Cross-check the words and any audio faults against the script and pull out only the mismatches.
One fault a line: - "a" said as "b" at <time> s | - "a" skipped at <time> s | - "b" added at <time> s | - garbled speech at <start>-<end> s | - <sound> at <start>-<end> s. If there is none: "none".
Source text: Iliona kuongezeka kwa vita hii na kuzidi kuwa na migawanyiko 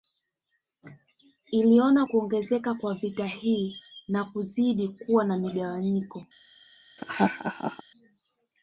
- laugh at 7.0-7.8 s